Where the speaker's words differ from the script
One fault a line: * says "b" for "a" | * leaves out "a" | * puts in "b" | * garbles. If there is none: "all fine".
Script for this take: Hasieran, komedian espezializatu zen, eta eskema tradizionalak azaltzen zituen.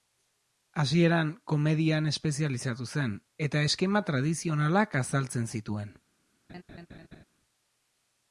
all fine